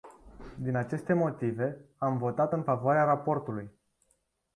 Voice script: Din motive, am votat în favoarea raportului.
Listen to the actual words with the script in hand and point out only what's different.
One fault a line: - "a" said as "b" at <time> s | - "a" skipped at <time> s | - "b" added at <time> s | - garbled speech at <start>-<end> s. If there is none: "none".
- "aceste" added at 0.8 s